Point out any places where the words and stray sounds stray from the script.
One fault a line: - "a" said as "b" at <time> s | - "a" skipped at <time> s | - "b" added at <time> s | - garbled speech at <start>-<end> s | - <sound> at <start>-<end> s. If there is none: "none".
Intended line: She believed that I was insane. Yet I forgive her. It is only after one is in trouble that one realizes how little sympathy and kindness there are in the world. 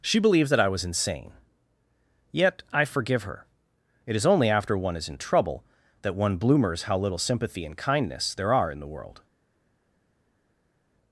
- "realizes" said as "bloomers" at 6.4 s